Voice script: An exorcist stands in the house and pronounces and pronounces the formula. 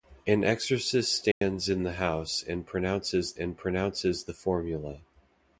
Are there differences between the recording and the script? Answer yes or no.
no